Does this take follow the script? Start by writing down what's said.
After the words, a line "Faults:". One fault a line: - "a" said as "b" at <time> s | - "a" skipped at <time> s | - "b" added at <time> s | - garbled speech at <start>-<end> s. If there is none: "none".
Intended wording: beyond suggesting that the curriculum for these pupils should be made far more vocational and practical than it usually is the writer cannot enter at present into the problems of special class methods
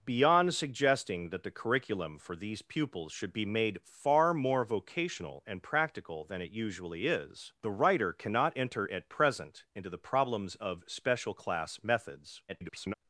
beyond suggesting that the curriculum for these pupils should be made far more vocational and practical than it usually is the writer cannot enter at present into the problems of special class methods [garbled]
Faults:
- garbled speech at 12.5-12.9 s